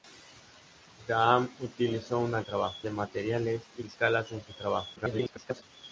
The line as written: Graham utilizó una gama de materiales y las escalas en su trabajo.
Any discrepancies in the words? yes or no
yes